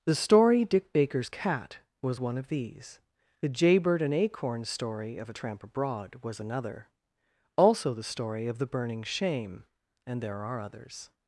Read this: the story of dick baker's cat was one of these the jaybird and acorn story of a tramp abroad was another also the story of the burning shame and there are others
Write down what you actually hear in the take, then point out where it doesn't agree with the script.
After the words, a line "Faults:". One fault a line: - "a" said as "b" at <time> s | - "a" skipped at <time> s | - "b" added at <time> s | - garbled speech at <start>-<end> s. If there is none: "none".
the story dick baker's cat was one of these the jaybird and acorn story of a tramp abroad was another also the story of the burning shame and there are others
Faults:
- "of" skipped at 0.7 s